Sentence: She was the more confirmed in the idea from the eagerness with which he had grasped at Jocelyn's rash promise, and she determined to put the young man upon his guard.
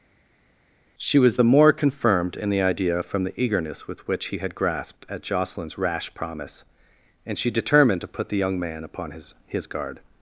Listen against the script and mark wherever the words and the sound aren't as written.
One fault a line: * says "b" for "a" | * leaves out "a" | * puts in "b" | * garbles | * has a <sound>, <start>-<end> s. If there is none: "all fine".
* puts in "his"